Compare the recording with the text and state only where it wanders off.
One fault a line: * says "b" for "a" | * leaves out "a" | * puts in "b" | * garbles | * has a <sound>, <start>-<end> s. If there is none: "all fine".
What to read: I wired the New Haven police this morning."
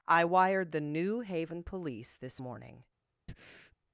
* has a breath, 3.3-3.8 s